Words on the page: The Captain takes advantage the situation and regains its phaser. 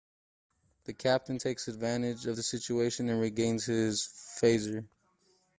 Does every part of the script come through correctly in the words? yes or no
no